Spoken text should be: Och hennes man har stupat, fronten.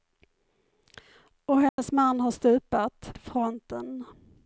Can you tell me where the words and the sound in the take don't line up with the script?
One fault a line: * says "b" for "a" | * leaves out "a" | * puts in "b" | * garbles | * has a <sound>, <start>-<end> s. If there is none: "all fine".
* has a dropout, 1.7-1.8 s